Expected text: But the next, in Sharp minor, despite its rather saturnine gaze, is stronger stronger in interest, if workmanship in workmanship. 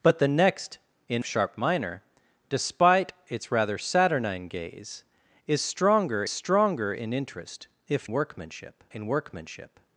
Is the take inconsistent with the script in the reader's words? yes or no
no